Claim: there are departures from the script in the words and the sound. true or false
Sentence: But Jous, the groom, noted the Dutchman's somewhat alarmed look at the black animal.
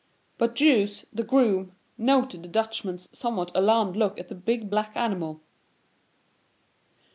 true